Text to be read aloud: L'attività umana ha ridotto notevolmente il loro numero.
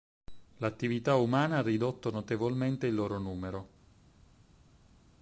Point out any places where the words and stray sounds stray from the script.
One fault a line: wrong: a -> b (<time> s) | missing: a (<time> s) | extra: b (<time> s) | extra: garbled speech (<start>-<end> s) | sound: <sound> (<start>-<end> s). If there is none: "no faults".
no faults